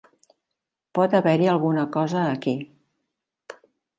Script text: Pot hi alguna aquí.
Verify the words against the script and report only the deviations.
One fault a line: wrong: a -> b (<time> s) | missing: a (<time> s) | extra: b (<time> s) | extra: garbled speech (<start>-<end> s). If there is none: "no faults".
extra: haver (1.2 s)
extra: cosa (2.0 s)